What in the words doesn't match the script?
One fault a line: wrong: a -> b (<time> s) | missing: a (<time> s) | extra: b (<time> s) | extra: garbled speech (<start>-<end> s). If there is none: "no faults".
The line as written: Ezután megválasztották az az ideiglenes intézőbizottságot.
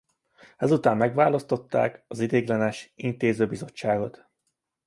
missing: az (2.2 s)